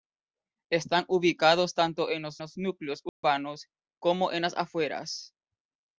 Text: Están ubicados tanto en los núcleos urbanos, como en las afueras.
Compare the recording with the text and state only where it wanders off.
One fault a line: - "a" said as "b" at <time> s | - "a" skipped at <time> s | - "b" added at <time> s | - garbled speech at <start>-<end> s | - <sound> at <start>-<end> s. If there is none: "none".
- "los" added at 2.4 s
- dropout at 3.1-3.2 s